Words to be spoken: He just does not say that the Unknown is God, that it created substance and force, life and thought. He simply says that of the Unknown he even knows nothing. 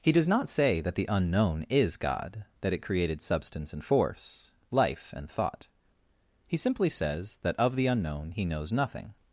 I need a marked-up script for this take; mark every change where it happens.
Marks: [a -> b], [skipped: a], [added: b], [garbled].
He [skipped: just] does not say that the Unknown is God, that it created substance and force, life and thought. He simply says that of the Unknown he [skipped: even] knows nothing.